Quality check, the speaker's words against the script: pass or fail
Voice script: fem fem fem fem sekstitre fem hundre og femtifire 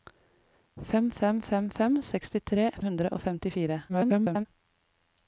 fail